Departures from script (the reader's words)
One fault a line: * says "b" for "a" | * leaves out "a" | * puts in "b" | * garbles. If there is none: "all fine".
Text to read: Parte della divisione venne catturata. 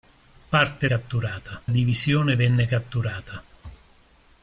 * says "catturata" for "della"